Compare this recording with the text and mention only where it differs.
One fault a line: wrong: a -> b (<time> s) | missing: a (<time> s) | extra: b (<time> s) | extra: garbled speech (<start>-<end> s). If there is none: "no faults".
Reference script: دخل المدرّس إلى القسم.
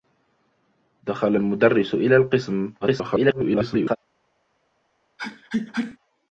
extra: garbled speech (2.8-4.0 s)